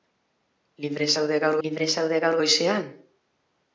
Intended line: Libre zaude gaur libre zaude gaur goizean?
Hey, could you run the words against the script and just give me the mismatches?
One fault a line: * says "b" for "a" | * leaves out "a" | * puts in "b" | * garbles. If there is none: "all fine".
all fine